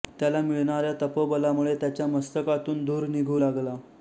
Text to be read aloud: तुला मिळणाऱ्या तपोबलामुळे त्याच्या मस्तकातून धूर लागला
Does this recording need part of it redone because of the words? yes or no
yes